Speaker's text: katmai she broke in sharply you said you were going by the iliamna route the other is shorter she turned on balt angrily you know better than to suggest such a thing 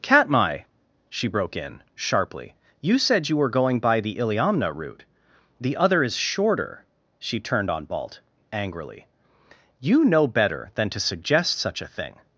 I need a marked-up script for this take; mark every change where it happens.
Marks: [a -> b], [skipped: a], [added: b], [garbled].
katmai she broke in sharply you said you were going by the iliamna route the other is shorter she turned on balt angrily you know better than to suggest such a thing